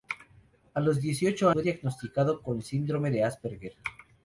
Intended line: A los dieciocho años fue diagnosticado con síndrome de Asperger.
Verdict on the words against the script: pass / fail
fail